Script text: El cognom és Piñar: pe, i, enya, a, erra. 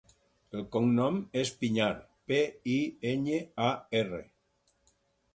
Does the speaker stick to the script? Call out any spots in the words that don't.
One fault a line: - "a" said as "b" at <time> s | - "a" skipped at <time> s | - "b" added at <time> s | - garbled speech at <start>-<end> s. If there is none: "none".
none